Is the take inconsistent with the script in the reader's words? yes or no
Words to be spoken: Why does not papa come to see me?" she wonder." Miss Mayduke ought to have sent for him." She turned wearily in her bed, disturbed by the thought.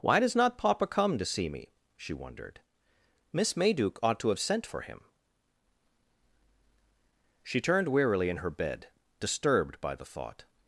yes